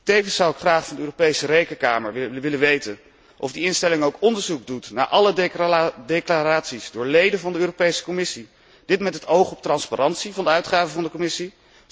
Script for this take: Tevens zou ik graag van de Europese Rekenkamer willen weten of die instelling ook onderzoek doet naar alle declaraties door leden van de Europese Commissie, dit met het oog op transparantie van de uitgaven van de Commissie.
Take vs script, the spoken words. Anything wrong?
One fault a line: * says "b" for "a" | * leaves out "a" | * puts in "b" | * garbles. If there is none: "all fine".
all fine